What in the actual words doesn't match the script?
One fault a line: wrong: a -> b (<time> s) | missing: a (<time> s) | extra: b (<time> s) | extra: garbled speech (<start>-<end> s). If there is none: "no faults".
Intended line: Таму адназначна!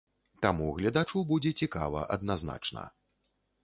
extra: гледачу будзе цікава (0.8 s)